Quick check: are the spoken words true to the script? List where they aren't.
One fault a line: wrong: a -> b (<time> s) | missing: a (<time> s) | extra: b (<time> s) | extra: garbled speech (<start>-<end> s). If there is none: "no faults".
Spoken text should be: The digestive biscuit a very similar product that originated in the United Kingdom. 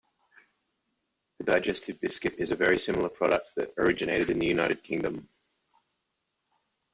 extra: is (2.4 s)